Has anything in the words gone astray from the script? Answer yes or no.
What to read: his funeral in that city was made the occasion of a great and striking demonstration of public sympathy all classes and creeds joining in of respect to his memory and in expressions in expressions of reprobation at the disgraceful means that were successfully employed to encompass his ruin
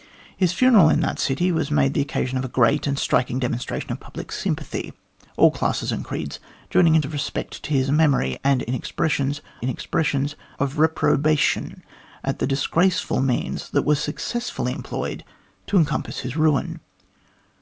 no